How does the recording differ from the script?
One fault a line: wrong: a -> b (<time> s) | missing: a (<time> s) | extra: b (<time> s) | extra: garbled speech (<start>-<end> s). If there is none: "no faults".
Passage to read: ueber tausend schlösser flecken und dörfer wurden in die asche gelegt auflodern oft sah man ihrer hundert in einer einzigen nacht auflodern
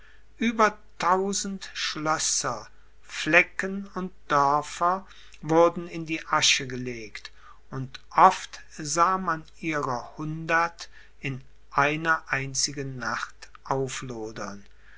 wrong: auflodern -> und (7.7 s)